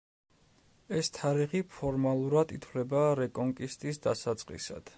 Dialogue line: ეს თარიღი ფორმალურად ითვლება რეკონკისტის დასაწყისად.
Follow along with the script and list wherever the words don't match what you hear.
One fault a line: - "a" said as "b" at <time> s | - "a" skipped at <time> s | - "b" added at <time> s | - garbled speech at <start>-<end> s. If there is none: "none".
none